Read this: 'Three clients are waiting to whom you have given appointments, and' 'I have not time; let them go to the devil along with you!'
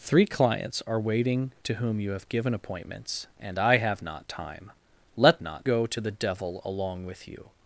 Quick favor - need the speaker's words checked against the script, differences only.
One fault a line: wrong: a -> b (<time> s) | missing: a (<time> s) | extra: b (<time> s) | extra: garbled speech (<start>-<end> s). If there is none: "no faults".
wrong: them -> not (5.4 s)